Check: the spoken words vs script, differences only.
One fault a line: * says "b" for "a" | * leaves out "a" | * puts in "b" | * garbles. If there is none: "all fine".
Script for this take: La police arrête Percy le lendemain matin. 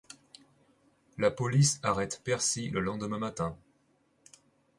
all fine